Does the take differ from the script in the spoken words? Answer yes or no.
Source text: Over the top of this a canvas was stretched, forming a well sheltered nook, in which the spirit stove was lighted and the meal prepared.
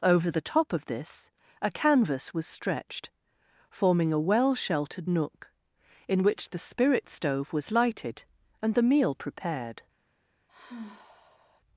no